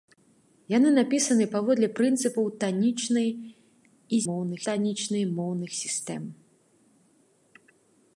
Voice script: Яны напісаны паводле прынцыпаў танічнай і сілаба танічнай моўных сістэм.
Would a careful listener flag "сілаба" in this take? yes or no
yes